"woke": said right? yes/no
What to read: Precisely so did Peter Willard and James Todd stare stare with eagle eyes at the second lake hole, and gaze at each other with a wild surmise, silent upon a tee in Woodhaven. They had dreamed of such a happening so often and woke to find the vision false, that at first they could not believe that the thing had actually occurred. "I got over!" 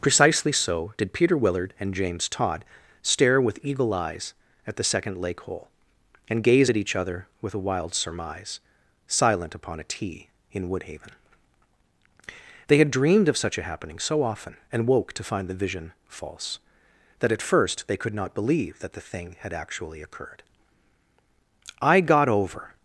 yes